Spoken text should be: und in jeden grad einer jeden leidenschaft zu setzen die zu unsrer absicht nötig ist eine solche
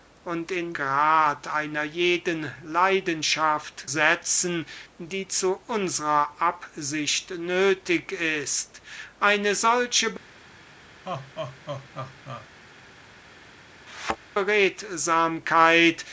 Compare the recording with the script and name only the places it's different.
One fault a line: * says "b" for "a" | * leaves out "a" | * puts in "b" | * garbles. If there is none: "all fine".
* leaves out "jeden"
* leaves out "zu"